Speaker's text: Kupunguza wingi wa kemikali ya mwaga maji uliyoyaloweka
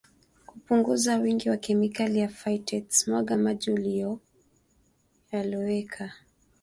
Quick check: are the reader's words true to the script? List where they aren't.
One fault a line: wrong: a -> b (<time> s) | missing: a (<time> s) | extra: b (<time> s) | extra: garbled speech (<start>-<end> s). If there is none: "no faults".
extra: phytates (2.3 s)